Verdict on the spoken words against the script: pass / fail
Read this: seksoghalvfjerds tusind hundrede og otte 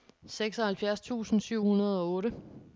fail